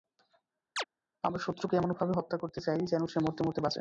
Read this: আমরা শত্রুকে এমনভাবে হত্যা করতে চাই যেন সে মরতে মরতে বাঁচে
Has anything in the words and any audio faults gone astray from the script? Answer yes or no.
yes